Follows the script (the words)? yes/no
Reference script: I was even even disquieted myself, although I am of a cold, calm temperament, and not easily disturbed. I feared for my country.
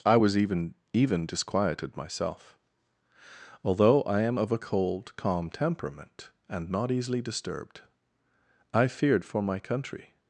yes